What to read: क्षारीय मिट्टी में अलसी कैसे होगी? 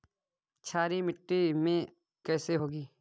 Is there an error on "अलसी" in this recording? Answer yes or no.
yes